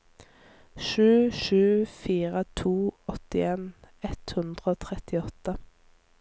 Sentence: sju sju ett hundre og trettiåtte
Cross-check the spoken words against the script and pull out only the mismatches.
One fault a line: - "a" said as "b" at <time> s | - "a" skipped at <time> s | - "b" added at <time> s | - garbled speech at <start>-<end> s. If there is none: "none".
- "fire to åttien" added at 1.9 s